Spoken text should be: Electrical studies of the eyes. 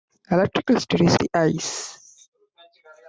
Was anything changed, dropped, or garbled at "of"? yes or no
yes